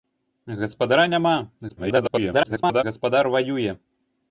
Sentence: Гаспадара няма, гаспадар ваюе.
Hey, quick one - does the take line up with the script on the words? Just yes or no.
no